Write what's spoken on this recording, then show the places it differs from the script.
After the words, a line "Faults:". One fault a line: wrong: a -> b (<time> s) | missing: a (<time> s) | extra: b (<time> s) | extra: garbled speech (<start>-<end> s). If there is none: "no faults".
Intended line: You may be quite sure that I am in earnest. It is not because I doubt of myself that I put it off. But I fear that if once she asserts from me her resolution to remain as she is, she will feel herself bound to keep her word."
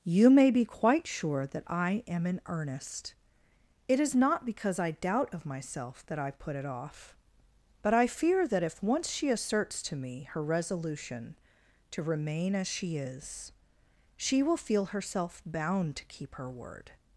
You may be quite sure that I am in earnest. It is not because I doubt of myself that I put it off. But I fear that if once she asserts to me her resolution to remain as she is, she will feel herself bound to keep her word."
Faults:
wrong: from -> to (9.8 s)